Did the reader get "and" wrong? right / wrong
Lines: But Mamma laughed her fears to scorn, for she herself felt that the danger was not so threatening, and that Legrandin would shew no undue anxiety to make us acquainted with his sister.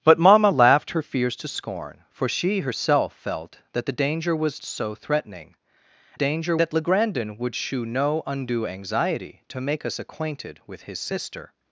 wrong